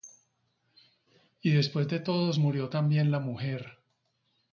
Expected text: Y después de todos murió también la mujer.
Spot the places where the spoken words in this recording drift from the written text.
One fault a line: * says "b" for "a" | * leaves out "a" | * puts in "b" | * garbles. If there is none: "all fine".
all fine